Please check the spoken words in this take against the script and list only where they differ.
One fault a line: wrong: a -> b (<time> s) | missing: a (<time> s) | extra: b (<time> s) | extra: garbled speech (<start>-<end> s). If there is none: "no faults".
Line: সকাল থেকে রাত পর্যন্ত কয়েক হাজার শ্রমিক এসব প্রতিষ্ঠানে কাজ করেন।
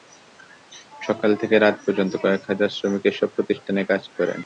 no faults